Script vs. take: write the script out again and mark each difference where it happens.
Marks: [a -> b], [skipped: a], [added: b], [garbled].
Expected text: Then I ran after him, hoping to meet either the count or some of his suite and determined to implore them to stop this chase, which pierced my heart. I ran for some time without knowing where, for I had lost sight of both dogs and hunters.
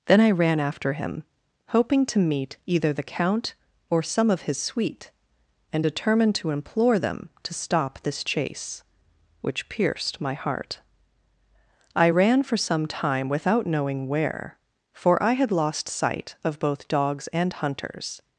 Then I ran after him, hoping to meet either the count or some of his suite and determined to implore them to stop this chase, which pierced my heart. I ran for some time without knowing where, for I had lost sight of both dogs and hunters.